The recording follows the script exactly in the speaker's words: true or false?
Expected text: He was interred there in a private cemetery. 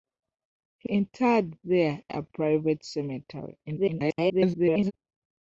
false